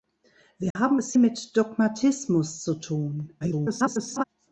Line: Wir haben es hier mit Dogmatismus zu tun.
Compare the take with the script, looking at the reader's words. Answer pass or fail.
fail